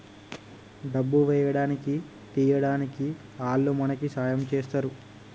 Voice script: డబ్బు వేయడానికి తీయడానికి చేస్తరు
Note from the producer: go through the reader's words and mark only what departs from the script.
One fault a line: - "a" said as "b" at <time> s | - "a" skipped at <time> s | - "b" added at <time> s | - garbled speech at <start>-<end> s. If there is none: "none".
- "ఆల్లు మనకి సాయం" added at 3.4 s